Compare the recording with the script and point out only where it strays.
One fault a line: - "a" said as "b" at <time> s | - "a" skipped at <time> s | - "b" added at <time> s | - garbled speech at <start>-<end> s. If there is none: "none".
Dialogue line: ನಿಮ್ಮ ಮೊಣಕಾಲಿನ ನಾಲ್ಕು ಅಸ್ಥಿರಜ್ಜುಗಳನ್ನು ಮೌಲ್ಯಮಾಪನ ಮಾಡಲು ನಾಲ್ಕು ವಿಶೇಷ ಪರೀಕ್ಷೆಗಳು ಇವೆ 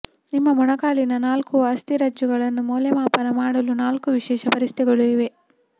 none